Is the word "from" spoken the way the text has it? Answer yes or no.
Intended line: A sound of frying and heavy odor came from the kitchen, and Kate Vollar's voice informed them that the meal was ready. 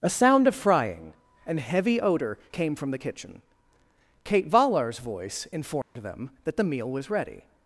yes